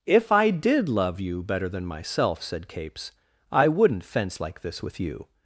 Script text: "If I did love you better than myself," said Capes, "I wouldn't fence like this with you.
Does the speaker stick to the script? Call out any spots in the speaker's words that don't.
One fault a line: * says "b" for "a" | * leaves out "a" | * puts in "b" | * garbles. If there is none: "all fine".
all fine